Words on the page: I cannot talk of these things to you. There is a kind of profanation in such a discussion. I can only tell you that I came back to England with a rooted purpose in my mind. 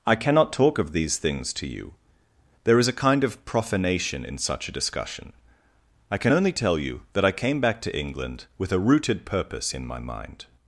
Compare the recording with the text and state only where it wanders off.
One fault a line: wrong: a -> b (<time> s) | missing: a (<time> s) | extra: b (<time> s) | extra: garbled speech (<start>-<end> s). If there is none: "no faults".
no faults